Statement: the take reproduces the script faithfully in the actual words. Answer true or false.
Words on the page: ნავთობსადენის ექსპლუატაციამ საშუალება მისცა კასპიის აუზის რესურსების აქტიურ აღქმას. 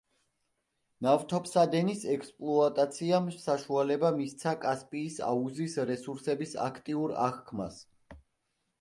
true